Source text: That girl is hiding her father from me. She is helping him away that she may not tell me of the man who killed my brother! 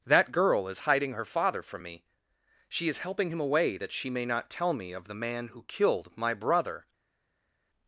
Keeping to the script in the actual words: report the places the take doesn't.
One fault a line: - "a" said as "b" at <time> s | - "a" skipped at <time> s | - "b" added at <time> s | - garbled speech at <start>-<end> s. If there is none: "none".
none